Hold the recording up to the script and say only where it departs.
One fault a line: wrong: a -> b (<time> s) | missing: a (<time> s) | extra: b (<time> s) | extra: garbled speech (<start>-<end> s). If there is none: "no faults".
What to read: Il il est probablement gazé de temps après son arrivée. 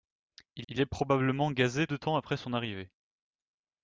no faults